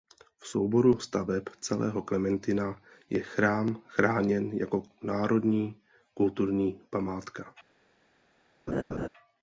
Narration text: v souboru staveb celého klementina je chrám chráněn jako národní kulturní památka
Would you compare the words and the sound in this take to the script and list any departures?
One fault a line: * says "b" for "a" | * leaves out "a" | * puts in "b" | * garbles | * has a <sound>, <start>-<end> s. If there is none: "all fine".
* has a laugh, 8.7-9.1 s